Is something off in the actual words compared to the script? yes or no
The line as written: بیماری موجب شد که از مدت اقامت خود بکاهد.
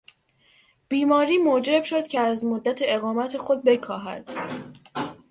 no